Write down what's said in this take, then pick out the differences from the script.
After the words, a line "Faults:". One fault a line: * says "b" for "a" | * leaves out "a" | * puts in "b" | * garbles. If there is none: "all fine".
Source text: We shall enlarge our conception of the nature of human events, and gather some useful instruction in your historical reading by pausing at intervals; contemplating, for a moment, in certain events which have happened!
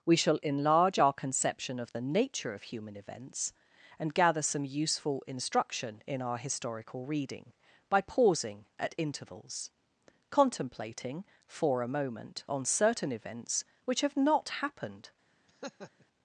We shall enlarge our conception of the nature of human events, and gather some useful instruction in our historical reading by pausing at intervals; contemplating, for a moment, on certain events which have not happened!
Faults:
* says "our" for "your"
* says "on" for "in"
* puts in "not"